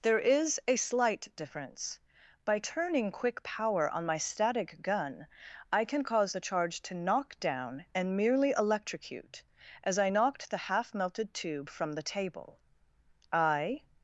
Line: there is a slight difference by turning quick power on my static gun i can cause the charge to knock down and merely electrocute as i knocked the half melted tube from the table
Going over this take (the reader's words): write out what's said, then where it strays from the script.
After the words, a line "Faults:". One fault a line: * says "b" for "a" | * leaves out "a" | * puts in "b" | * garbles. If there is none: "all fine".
there is a slight difference by turning quick power on my static gun i can cause the charge to knock down and merely electrocute as i knocked the half melted tube from the table i
Faults:
* puts in "i"